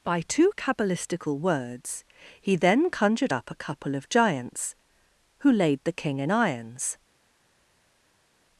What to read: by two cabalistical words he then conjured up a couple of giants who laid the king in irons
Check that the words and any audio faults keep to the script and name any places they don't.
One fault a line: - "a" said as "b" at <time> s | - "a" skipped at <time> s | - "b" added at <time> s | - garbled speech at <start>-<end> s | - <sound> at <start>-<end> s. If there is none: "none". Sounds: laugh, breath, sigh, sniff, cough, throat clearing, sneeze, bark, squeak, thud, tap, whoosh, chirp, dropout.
none